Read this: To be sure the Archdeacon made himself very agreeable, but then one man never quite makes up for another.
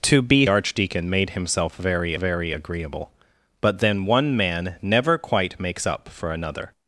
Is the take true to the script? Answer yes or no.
no